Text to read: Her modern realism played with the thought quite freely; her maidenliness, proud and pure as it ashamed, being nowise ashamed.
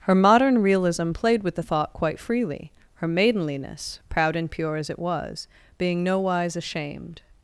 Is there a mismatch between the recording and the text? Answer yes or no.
yes